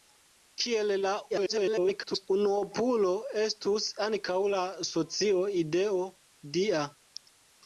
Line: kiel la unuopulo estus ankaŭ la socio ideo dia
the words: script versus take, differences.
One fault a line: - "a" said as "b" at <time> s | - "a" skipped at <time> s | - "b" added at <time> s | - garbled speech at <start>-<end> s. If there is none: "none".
- garbled speech at 1.3-2.3 s